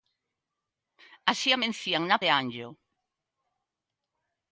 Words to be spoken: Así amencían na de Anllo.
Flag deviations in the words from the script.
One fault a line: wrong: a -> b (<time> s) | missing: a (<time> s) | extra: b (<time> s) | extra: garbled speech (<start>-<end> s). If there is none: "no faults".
no faults